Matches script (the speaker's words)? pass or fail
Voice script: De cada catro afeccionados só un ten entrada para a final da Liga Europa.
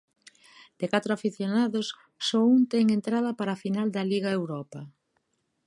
fail